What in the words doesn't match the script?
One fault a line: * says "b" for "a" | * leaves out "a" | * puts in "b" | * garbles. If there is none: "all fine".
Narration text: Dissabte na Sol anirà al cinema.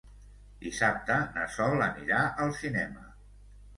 all fine